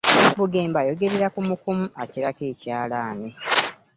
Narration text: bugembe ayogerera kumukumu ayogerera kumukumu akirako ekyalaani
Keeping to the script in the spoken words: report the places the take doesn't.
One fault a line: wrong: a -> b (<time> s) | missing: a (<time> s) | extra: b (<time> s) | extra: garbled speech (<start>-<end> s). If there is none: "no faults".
missing: ayogerera kumukumu (1.9 s)